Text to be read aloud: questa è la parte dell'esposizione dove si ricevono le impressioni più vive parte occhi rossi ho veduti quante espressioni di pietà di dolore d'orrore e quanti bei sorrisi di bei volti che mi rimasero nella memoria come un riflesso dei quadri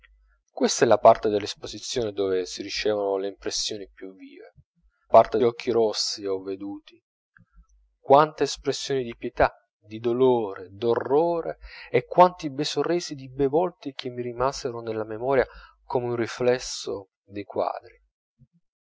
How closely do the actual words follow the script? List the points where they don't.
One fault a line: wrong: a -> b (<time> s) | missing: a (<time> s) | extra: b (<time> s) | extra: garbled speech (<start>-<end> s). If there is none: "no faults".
no faults